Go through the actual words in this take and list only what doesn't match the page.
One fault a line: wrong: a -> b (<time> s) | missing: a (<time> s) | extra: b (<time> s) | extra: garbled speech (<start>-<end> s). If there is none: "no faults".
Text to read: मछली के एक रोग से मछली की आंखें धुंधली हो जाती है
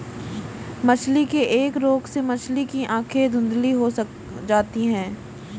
no faults